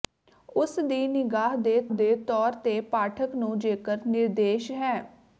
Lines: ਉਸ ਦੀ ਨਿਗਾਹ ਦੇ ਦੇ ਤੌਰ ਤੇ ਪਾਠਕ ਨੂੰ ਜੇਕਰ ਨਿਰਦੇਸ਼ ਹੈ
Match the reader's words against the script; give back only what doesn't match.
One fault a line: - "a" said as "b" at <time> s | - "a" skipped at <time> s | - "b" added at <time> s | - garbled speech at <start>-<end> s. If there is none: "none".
none